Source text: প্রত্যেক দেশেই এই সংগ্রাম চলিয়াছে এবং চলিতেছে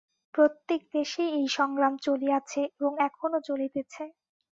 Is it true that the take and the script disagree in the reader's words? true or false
true